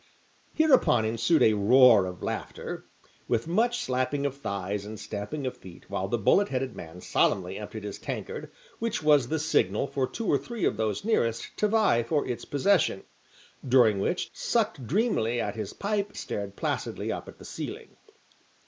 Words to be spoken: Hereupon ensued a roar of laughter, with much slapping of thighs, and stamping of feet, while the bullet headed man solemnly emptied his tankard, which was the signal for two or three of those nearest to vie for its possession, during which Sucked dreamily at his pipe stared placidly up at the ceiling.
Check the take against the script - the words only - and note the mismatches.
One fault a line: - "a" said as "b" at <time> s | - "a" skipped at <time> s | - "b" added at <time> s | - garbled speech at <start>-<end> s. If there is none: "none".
none